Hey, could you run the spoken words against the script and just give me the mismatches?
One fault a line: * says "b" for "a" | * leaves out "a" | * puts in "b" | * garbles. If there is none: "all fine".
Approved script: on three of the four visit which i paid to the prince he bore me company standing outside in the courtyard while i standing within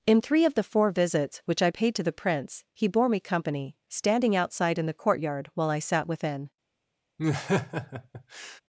* says "in" for "on"
* says "visits" for "visit"
* says "sat" for "standing"